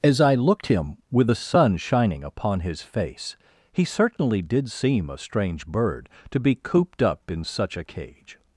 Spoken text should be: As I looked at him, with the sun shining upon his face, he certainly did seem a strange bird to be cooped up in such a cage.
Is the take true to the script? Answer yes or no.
no